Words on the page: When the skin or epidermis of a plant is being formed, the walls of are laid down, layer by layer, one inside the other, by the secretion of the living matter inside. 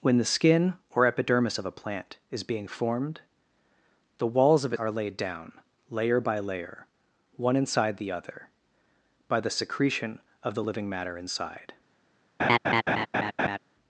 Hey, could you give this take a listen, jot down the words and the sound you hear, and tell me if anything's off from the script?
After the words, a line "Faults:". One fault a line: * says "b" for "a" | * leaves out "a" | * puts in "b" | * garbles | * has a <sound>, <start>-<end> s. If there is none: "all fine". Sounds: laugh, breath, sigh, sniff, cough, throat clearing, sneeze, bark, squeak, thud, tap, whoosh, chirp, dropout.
When the skin or epidermis of a plant is being formed, the walls of are laid down, layer by layer, one inside the other, by the secretion of the living matter inside.
Faults:
* has a laugh, 12.4-13.6 s